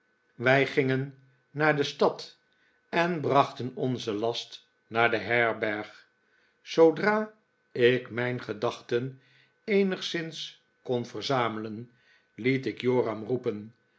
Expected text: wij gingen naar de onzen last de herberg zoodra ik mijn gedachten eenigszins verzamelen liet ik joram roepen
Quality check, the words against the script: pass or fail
fail